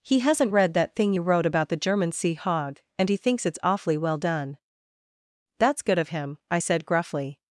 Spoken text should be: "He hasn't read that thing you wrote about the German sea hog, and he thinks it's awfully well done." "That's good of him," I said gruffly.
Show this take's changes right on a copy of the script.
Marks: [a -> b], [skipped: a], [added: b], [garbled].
"He hasn't read that thing you wrote about the German sea hog, and he thinks it's awfully well done." "That's good of him," I said gruffly.